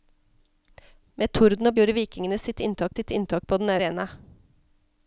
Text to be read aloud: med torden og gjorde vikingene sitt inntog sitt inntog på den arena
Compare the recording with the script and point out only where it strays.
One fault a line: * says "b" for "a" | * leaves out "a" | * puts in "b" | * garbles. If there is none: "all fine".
all fine